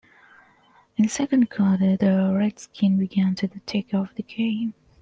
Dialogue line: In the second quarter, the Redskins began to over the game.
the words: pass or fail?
fail